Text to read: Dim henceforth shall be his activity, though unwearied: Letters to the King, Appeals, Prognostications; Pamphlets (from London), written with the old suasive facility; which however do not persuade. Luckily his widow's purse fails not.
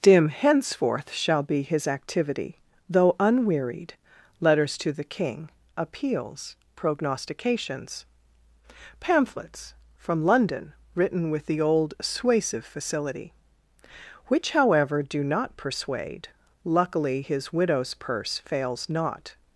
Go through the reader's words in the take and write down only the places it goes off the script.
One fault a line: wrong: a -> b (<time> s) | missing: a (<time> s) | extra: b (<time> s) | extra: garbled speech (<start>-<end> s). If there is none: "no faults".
no faults